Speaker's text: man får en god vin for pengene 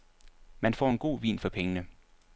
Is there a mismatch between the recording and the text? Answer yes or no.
no